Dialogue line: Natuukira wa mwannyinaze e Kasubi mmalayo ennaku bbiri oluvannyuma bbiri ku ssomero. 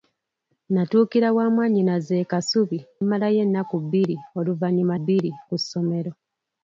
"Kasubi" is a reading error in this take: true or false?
false